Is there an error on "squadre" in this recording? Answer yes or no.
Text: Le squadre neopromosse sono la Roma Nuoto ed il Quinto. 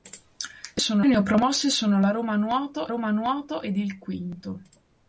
yes